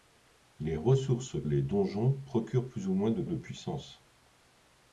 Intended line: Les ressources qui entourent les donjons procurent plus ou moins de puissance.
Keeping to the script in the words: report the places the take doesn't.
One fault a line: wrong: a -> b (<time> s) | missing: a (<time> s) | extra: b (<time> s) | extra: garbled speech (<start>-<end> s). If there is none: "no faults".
missing: qui entourent (1.4 s)
extra: de (3.2 s)